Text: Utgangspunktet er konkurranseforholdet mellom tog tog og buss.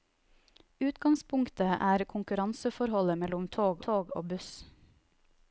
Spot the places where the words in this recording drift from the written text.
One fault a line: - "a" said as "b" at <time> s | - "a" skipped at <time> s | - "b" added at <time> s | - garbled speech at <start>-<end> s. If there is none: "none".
none